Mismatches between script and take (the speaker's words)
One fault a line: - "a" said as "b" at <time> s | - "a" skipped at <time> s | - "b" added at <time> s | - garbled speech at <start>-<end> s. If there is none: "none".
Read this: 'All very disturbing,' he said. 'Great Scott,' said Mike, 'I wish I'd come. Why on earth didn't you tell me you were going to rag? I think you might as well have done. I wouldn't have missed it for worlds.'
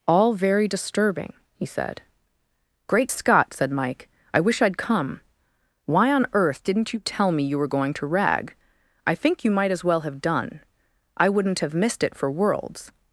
none